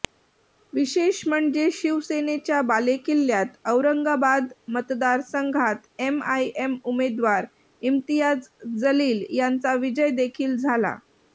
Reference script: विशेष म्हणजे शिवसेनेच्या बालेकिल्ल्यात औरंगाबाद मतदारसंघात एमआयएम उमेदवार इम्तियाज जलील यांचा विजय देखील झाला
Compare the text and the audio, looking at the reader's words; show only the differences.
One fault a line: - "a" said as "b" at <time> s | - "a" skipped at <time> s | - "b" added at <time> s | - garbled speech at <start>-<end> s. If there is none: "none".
none